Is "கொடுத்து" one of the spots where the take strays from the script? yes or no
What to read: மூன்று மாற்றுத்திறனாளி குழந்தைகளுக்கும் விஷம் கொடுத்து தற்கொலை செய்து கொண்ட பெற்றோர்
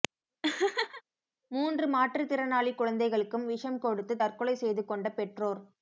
no